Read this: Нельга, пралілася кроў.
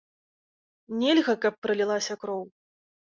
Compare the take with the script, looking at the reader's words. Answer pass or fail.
fail